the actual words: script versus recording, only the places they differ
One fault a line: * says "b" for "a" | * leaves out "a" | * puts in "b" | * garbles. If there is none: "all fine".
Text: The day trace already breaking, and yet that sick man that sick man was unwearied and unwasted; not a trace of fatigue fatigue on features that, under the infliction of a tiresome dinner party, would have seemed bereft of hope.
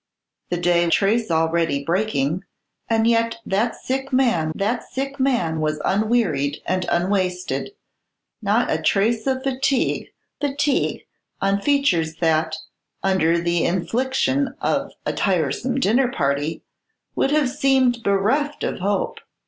all fine